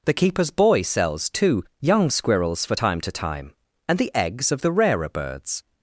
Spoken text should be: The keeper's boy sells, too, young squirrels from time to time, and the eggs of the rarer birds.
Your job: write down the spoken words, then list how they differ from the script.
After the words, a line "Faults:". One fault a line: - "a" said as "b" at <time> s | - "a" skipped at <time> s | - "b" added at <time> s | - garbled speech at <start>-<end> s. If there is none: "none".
The keeper's boy sells, too, young squirrels for time to time, and the eggs of the rarer birds.
Faults:
- "from" said as "for" at 2.6 s